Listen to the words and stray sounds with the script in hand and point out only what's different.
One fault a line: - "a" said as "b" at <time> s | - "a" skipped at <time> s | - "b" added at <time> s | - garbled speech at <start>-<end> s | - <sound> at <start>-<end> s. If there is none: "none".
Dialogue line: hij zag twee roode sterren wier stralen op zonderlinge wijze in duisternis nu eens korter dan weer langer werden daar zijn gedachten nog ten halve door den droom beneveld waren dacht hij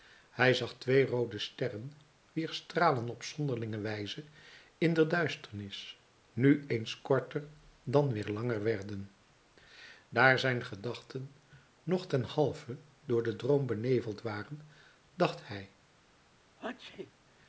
- "de" added at 4.9 s
- sneeze at 16.6-17.1 s